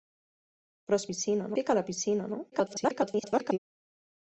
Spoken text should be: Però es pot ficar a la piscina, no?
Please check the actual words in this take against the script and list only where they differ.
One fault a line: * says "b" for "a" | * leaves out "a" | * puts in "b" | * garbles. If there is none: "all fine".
* says "piscina" for "pot"
* garbles